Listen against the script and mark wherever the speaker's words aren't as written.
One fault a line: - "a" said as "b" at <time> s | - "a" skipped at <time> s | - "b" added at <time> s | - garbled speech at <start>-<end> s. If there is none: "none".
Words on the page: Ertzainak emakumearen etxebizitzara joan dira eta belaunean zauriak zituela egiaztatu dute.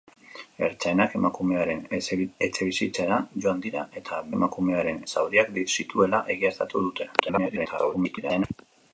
- "belaunean" said as "emakumearen" at 4.4 s
- garbled speech at 7.2-8.4 s